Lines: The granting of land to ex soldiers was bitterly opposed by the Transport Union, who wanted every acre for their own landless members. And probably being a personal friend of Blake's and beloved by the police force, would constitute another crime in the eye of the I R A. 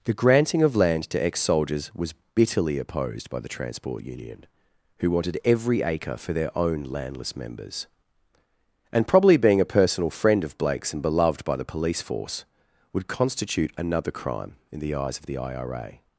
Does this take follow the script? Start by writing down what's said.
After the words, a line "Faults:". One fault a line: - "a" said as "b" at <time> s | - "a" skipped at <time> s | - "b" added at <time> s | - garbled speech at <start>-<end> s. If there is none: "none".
The granting of land to ex soldiers was bitterly opposed by the Transport Union, who wanted every acre for their own landless members. And probably being a personal friend of Blake's and beloved by the police force, would constitute another crime in the eyes of the I R A.
Faults:
- "eye" said as "eyes" at 14.9 s